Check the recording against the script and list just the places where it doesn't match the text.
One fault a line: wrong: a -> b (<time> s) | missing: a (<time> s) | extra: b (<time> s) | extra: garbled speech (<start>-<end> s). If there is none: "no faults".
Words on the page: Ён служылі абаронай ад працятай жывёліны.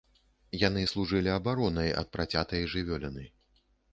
wrong: Ён -> Яны (0.7 s)